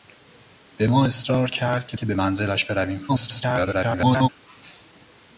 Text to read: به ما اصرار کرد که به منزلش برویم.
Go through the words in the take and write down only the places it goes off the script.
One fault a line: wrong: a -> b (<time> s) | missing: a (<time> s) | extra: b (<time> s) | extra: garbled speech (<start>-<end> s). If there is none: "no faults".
extra: که (2.0 s)
extra: garbled speech (3.1-4.3 s)